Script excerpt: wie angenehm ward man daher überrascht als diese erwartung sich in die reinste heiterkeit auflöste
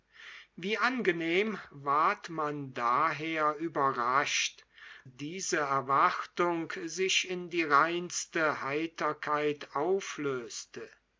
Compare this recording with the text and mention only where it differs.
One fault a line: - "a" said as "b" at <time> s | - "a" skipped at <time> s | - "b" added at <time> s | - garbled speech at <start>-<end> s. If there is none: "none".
- "als" skipped at 4.6 s